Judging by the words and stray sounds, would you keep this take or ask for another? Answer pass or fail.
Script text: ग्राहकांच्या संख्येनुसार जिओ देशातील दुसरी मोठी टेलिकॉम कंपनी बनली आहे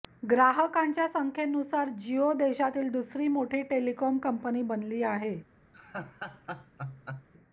fail